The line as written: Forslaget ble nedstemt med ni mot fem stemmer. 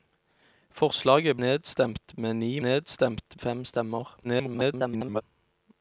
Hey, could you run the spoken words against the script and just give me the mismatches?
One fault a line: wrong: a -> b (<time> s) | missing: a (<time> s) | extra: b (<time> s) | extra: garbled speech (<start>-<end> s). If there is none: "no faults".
missing: ble (1.4 s)
wrong: mot -> nedstemt (2.6 s)
extra: garbled speech (4.2-5.2 s)